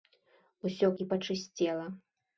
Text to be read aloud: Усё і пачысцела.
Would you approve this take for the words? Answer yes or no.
yes